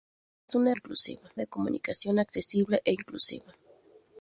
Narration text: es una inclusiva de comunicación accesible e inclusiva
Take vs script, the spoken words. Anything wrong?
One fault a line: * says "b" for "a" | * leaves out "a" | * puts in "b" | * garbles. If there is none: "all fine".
all fine